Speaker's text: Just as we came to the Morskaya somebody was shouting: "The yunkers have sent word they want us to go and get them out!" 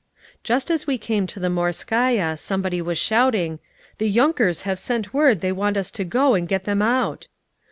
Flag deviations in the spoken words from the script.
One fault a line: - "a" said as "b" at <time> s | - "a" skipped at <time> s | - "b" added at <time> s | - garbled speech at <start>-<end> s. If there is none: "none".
none